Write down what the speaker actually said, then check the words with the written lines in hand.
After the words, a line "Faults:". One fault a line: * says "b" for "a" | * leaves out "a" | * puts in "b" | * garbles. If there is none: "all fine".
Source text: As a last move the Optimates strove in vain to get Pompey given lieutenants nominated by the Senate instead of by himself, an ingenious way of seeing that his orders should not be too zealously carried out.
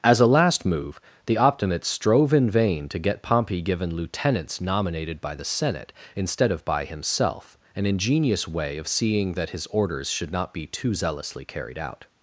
As a last move the Optimates strove in vain to get Pompey given lieutenants nominated by the Senate instead of by himself, an ingenious way of seeing that his orders should not be too zealously carried out.
Faults:
all fine